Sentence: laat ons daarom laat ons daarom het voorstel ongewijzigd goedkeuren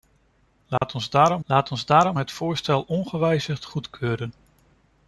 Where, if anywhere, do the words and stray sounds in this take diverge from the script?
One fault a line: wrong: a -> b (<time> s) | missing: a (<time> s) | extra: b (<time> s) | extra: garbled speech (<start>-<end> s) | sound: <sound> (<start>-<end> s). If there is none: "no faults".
sound: dropout (0.8-0.8 s)